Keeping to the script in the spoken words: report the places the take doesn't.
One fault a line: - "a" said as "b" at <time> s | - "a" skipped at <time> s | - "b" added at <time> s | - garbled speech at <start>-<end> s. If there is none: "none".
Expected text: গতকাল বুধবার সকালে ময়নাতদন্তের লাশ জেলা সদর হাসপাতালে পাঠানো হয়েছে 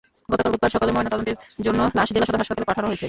- "জন্য" added at 1.6 s